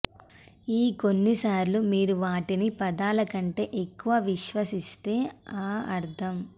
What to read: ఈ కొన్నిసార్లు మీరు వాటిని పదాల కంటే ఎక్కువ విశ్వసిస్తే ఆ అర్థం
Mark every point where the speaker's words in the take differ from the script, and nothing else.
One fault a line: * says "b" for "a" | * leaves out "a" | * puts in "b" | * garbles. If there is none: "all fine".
all fine